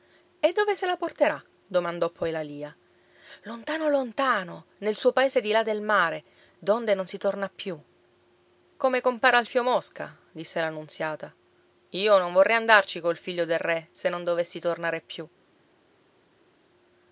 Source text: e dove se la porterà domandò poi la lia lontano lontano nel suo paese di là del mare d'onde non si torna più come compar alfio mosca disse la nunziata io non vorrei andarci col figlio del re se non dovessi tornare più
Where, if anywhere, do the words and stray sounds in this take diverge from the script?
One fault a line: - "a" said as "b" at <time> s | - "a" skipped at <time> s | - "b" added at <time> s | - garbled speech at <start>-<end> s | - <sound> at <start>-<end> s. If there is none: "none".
none